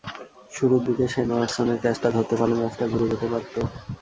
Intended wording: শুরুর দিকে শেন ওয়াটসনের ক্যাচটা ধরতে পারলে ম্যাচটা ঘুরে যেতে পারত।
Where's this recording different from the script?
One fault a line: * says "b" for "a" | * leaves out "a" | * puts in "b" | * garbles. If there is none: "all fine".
all fine